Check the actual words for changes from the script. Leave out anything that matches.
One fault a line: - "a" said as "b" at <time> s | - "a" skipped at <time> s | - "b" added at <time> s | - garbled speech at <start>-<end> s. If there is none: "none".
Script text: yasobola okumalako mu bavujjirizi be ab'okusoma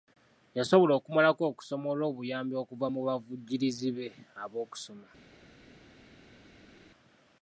- "okusoma olw'obuyambi okuva" added at 1.5 s